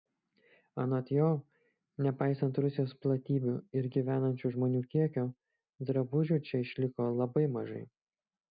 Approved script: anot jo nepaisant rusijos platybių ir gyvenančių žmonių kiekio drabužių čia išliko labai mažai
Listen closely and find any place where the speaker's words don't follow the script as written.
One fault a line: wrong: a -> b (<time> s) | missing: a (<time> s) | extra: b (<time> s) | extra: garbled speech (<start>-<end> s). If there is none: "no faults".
no faults